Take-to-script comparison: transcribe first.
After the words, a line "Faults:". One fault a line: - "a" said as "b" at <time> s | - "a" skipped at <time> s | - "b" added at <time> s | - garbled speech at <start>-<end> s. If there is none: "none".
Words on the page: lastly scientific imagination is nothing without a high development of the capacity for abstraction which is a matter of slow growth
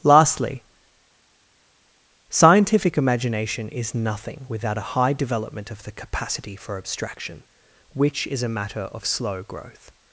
lastly scientific imagination is nothing without a high development of the capacity for abstraction which is a matter of slow growth
Faults:
none